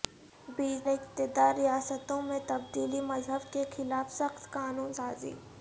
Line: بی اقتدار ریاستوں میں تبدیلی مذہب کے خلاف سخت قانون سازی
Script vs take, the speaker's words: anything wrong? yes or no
no